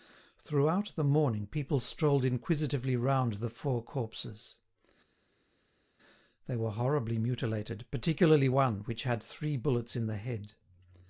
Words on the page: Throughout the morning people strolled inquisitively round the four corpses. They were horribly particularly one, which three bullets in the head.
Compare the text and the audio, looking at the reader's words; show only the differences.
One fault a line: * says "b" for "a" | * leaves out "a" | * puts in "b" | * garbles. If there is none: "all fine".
* puts in "mutilated"
* puts in "had"